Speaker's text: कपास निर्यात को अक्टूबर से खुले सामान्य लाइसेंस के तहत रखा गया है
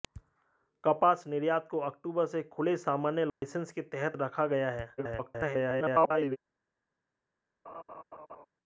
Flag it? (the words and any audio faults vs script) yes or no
yes